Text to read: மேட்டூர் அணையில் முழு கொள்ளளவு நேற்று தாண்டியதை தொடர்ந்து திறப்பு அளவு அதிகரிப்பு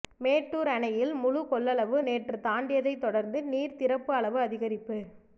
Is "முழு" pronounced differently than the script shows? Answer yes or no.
no